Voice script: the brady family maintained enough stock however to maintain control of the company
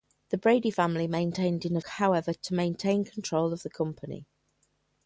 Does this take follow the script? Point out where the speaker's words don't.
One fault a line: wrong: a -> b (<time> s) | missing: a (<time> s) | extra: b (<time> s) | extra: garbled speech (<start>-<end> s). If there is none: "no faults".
missing: stock (1.9 s)